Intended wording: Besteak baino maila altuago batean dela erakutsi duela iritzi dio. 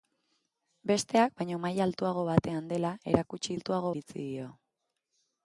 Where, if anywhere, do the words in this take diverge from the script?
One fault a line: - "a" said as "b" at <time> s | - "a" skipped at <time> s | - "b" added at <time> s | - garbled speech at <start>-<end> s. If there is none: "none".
- "duela" said as "altuago" at 3.6 s